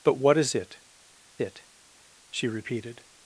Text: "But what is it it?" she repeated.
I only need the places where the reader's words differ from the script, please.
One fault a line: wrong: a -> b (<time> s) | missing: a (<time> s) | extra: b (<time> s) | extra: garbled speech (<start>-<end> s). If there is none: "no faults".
no faults